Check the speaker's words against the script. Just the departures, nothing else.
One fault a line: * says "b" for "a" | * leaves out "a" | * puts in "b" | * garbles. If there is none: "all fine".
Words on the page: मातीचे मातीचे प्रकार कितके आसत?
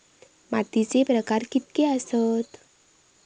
* leaves out "मातीचे"